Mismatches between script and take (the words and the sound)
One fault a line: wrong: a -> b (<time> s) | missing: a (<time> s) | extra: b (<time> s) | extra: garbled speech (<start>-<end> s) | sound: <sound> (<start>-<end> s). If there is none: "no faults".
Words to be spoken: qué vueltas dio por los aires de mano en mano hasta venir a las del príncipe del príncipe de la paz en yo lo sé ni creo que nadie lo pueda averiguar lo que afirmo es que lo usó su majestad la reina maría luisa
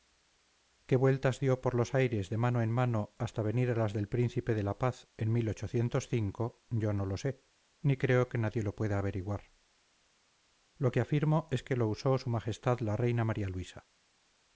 missing: del príncipe (4.5 s)
extra: no (6.9 s)